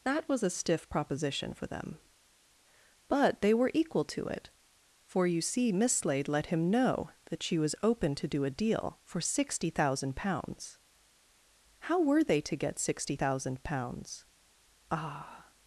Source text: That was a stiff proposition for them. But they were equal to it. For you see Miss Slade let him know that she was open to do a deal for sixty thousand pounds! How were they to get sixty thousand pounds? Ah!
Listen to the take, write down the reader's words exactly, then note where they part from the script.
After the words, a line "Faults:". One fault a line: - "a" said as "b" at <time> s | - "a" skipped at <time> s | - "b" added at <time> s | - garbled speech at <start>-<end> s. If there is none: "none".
That was a stiff proposition for them. But they were equal to it. For you see Miss Slade let him know that she was open to do a deal for sixty thousand pounds! How were they to get sixty thousand pounds? Ah!
Faults:
none